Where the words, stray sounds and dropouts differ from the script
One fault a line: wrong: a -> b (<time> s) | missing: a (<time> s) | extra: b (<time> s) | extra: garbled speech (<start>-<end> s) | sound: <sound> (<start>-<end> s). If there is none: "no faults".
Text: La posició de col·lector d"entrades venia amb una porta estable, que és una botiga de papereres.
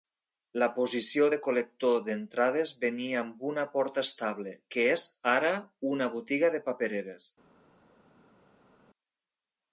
extra: ara (5.4 s)